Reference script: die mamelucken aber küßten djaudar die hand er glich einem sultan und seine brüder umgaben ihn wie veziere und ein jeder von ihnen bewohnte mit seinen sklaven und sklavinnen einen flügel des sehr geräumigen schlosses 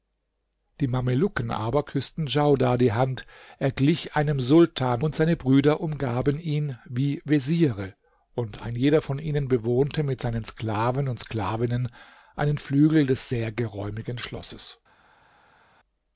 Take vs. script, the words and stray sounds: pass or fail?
pass